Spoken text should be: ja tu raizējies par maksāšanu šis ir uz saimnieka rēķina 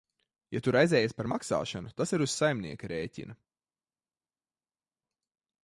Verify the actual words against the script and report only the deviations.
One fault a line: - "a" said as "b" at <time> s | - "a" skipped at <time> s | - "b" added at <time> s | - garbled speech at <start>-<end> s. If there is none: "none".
- "šis" said as "tas" at 2.0 s